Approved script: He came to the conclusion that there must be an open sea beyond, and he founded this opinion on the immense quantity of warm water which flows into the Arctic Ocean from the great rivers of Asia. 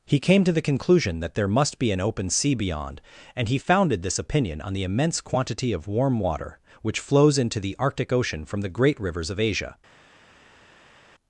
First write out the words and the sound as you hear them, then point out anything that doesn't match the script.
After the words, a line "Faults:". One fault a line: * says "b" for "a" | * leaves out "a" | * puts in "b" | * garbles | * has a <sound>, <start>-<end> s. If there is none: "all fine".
He came to the conclusion that there must be an open sea beyond, and he founded this opinion on the immense quantity of warm water which flows into the Arctic Ocean from the great rivers of Asia.
Faults:
all fine